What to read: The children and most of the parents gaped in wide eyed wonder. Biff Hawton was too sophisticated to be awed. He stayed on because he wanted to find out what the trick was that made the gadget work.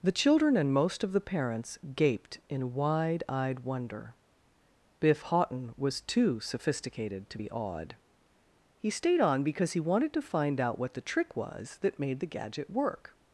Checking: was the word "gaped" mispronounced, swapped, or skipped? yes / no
no